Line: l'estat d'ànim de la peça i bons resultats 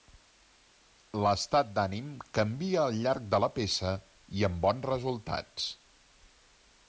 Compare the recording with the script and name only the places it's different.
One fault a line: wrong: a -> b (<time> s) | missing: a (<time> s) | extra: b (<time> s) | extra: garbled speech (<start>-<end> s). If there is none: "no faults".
extra: canvia al llarg (2.4 s)
extra: amb (4.5 s)